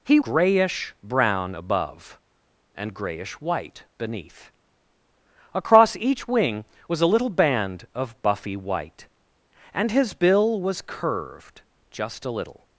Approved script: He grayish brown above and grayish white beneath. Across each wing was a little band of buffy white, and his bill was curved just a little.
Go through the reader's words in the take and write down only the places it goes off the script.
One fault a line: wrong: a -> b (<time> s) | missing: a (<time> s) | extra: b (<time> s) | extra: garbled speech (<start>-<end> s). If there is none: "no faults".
no faults